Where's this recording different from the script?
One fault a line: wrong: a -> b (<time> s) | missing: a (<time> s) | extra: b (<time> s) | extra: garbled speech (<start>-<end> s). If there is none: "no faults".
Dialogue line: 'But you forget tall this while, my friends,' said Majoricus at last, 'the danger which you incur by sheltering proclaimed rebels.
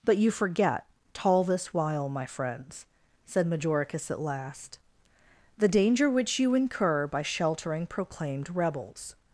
no faults